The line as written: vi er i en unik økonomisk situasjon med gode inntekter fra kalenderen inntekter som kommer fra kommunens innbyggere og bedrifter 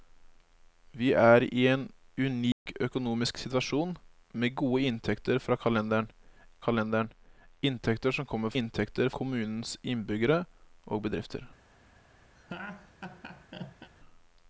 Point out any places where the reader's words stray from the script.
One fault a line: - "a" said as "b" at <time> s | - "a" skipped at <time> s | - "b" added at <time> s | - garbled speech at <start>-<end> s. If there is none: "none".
- "kalenderen" added at 6.7 s
- "fra" said as "inntekter" at 8.6 s